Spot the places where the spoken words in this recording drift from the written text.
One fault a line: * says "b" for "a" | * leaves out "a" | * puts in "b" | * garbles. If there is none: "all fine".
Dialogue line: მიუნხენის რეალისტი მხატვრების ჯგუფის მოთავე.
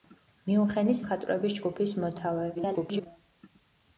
* leaves out "რეალისტი"
* garbles